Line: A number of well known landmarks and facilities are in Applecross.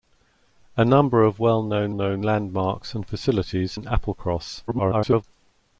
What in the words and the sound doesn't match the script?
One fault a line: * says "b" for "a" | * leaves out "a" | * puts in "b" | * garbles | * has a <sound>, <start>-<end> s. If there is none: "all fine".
* puts in "known"
* leaves out "are"
* garbles